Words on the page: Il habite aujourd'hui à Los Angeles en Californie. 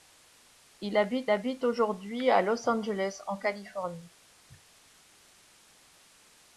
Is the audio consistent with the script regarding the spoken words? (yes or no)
no